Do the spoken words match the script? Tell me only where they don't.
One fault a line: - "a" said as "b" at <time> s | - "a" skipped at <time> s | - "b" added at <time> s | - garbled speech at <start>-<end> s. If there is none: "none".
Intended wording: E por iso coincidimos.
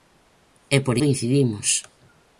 - "iso" skipped at 0.9 s